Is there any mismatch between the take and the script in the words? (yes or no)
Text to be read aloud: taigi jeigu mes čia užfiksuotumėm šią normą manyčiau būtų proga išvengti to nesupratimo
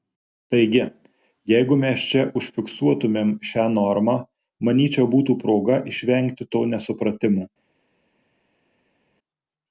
no